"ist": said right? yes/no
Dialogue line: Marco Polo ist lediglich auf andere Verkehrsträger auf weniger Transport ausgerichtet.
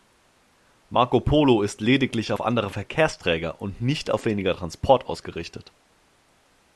yes